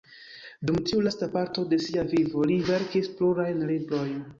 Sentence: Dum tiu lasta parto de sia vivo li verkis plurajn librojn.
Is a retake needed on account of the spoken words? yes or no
no